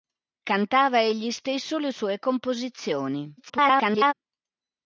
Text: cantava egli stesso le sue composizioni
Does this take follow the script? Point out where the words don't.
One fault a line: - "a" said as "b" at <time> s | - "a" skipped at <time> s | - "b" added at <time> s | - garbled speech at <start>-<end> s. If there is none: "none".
- garbled speech at 3.4-4.1 s